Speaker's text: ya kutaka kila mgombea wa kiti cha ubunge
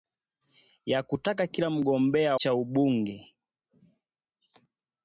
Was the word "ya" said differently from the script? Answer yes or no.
no